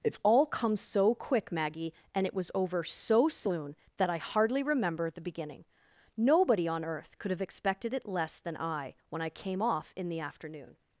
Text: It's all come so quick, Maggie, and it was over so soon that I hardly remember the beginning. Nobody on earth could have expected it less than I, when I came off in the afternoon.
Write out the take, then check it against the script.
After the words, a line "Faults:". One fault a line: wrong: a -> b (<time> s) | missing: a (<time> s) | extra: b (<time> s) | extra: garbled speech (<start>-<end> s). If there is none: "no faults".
It's all come so quick, Maggie, and it was over so soon that I hardly remember the beginning. Nobody on earth could have expected it less than I, when I came off in the afternoon.
Faults:
no faults